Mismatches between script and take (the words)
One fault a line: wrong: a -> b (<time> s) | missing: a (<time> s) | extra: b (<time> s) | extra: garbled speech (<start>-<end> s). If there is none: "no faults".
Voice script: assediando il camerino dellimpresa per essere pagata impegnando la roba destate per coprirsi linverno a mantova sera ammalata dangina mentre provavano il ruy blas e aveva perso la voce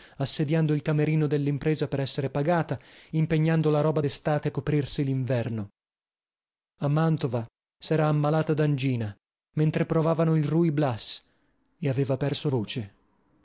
missing: per (4.5 s)
missing: la (12.5 s)